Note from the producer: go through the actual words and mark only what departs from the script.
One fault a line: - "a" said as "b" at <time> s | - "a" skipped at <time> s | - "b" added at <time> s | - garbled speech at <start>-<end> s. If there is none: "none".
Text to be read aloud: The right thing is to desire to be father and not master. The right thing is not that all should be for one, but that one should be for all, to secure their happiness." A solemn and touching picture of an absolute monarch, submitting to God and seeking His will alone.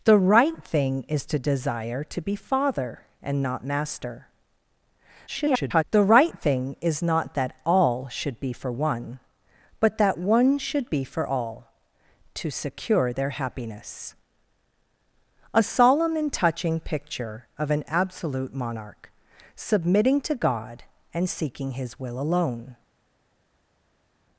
- garbled speech at 5.3-5.8 s